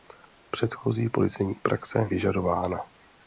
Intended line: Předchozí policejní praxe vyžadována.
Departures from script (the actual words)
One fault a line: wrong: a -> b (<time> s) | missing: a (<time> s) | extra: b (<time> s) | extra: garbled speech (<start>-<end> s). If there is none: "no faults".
no faults